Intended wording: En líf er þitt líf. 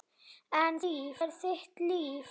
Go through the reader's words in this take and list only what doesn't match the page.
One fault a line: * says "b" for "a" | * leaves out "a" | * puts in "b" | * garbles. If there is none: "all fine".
all fine